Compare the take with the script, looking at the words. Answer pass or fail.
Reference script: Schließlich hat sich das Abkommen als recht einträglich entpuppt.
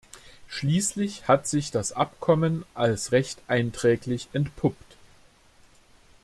pass